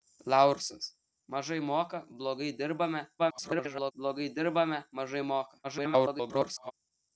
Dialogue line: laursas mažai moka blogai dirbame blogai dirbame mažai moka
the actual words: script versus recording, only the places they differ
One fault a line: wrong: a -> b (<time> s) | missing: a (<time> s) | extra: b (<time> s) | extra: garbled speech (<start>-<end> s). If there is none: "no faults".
extra: garbled speech (3.2-3.9 s)
extra: garbled speech (5.6-6.7 s)